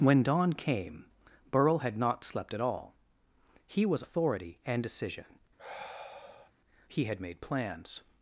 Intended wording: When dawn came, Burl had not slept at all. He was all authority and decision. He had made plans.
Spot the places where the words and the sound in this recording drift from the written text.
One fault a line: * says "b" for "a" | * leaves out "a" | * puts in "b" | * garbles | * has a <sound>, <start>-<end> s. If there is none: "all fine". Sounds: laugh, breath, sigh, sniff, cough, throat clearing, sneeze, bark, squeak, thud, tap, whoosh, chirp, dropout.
* leaves out "all"
* has a sigh, 5.6-6.5 s